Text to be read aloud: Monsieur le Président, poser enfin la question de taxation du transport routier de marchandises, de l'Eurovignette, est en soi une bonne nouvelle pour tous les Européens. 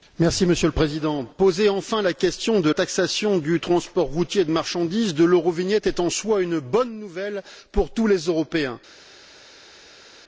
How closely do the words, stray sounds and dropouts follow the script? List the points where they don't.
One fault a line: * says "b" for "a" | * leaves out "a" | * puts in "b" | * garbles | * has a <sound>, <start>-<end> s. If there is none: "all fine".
all fine